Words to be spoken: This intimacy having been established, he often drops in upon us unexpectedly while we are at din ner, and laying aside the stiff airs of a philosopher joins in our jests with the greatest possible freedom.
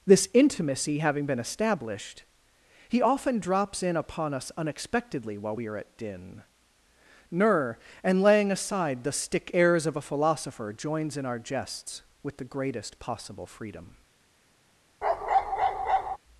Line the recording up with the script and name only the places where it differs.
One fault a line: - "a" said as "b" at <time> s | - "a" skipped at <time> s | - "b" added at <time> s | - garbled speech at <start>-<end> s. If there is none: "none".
- "stiff" said as "stick" at 9.1 s